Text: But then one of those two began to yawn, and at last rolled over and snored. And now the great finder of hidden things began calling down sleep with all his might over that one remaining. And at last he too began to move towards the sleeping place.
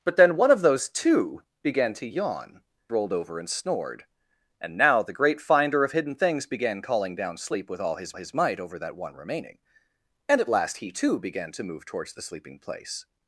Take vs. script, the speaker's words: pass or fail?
fail